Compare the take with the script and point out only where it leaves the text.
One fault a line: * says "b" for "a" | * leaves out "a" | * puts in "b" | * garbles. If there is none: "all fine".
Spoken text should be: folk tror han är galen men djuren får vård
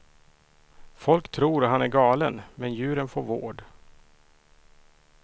all fine